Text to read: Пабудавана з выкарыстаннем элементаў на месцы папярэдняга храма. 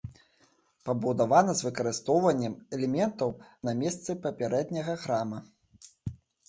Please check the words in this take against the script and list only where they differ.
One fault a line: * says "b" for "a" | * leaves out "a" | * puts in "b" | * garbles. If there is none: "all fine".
all fine